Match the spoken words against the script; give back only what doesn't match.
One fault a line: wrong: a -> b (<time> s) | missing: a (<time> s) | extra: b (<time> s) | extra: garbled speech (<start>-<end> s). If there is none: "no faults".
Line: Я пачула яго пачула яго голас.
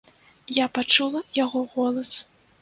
missing: пачула яго (1.6 s)